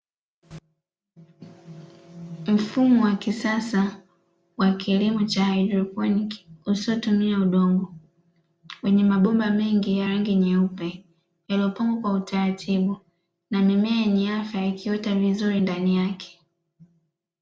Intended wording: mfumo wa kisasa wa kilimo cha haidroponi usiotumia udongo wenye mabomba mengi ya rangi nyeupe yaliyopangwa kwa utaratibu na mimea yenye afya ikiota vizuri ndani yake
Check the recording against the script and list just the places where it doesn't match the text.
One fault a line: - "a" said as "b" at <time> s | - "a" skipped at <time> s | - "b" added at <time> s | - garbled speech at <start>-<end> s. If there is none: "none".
none